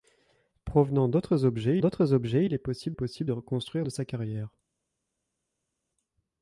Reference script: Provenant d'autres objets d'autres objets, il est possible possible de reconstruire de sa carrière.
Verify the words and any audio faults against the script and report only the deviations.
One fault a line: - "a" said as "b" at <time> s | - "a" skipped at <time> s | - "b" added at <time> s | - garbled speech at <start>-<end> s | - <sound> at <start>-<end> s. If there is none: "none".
none